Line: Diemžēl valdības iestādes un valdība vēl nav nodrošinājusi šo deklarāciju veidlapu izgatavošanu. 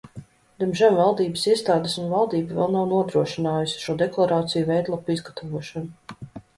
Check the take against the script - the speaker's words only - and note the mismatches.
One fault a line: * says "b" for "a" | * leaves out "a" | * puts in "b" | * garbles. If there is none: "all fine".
all fine